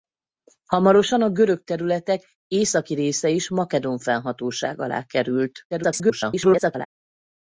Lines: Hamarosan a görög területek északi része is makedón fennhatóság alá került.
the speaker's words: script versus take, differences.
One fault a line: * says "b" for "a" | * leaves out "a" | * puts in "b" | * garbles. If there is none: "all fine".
* garbles